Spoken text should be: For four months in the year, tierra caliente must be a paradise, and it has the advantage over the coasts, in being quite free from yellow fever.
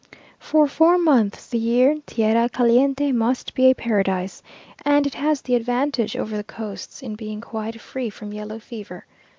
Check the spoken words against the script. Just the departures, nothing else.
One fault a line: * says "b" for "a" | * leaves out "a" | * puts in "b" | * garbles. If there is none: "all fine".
* leaves out "in"